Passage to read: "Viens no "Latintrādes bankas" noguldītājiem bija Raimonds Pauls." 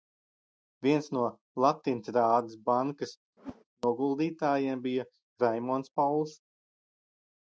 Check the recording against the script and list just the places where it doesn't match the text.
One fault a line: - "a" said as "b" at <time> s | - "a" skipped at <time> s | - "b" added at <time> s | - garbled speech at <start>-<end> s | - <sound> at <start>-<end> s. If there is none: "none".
- whoosh at 3.4-3.6 s